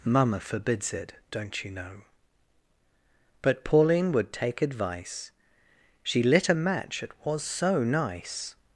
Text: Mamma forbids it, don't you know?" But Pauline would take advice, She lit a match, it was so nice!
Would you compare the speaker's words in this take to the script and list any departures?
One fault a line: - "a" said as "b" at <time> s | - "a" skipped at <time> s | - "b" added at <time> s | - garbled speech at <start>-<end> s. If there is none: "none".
none